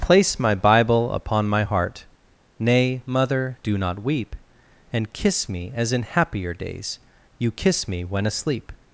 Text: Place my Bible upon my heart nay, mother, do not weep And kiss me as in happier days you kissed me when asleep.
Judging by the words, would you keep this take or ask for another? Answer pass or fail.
fail